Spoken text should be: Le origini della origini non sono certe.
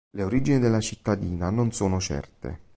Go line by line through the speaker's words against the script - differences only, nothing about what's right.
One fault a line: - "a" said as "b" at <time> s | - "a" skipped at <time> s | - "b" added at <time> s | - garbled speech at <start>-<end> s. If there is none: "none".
- "origini" said as "cittadina" at 0.8 s